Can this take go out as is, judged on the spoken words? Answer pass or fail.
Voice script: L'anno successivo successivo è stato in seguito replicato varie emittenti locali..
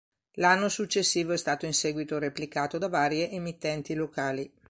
fail